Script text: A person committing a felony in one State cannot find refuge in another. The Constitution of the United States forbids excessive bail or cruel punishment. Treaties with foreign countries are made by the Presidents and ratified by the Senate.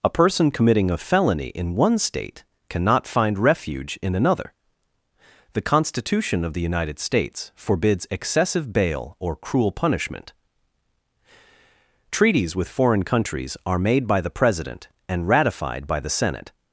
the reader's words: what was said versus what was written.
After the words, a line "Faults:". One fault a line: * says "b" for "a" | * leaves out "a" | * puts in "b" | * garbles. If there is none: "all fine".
A person committing a felony in one State cannot find refuge in another. The Constitution of the United States forbids excessive bail or cruel punishment. Treaties with foreign countries are made by the President and ratified by the Senate.
Faults:
* says "President" for "Presidents"